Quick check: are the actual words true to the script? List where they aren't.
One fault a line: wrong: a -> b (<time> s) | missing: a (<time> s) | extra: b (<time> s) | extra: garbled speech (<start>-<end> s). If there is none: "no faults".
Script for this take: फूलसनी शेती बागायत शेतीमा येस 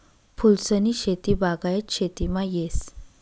no faults